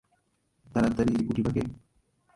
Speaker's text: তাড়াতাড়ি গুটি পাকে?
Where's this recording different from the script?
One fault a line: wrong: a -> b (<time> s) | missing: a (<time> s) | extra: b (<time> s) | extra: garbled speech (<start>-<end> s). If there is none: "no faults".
no faults